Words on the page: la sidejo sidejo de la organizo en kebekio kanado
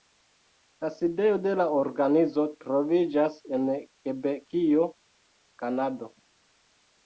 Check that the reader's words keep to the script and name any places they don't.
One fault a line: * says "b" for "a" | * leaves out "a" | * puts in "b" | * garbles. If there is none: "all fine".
* leaves out "sidejo"
* puts in "troviĝas"